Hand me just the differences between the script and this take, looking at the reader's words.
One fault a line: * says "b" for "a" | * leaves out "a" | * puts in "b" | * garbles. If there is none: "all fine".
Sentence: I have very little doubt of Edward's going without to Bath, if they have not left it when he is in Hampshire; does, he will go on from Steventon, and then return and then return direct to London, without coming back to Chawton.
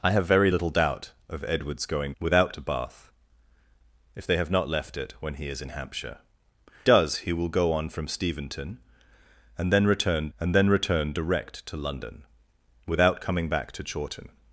all fine